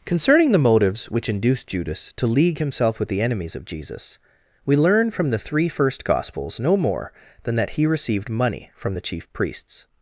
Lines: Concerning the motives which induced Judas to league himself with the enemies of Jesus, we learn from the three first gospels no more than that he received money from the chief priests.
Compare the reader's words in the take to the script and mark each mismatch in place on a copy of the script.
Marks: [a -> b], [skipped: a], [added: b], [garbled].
Concerning the motives which induced Judas to league himself with the enemies of Jesus, we learn from the three first gospels no more than that he received money from the chief priests.